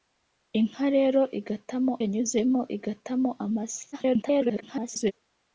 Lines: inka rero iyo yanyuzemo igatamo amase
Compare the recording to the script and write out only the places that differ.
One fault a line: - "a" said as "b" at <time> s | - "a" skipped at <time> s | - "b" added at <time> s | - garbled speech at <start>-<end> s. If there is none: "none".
- "iyo" said as "igatamo" at 1.4 s
- garbled speech at 3.9-5.1 s